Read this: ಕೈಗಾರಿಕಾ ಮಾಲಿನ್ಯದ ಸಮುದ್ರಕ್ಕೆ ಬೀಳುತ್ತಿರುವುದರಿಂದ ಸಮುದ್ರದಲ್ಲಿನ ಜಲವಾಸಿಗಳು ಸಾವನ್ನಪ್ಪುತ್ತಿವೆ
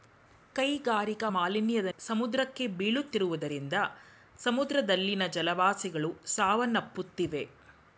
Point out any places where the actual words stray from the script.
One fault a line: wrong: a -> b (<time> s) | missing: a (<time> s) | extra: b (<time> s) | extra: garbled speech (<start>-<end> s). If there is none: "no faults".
no faults